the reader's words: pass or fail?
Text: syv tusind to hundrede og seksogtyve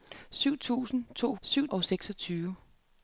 fail